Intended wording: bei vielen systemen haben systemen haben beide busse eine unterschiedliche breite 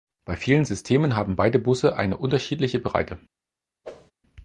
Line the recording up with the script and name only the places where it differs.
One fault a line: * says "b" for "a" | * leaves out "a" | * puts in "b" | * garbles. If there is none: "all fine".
* leaves out "systemen haben"